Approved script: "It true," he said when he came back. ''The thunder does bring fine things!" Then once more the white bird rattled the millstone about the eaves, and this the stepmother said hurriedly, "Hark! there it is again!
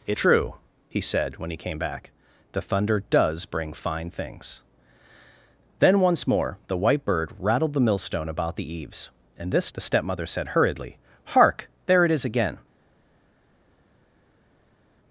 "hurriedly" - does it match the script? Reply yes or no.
yes